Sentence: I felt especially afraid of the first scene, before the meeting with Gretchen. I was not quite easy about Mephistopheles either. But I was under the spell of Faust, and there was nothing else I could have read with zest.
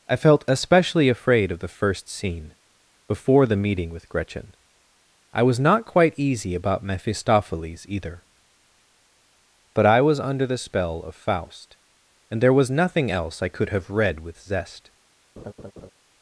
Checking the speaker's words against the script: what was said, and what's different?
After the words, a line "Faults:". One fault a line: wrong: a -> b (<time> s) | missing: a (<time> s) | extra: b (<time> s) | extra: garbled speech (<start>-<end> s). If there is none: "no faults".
I felt especially afraid of the first scene, before the meeting with Gretchen. I was not quite easy about Mephistopheles either. But I was under the spell of Faust, and there was nothing else I could have read with zest.
Faults:
no faults